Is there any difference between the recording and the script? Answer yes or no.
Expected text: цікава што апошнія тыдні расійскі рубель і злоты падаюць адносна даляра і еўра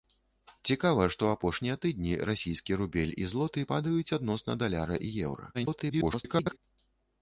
yes